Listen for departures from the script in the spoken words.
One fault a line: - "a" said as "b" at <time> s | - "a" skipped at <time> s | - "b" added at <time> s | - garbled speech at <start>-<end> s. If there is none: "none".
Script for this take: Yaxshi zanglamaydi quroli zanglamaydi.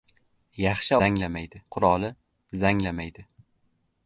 none